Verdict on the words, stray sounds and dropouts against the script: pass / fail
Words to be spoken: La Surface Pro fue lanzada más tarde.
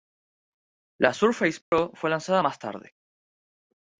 fail